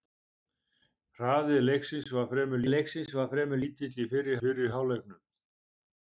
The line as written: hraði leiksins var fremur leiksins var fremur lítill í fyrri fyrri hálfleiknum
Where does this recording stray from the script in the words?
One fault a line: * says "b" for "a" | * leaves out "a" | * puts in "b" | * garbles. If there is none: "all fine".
all fine